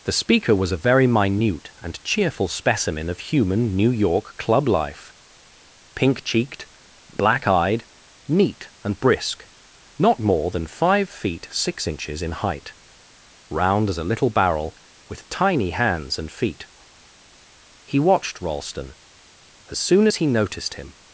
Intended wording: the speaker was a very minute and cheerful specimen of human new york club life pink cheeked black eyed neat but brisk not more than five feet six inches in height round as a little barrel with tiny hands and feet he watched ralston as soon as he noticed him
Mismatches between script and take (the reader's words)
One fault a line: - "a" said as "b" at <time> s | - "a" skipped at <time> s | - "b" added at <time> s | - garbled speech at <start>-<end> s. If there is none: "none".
- "but" said as "and" at 8.8 s